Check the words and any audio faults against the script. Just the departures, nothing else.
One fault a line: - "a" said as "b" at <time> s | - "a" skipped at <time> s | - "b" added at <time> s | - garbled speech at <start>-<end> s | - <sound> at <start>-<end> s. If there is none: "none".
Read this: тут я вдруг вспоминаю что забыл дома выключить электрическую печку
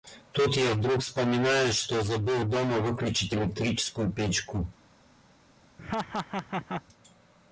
- laugh at 5.8-6.8 s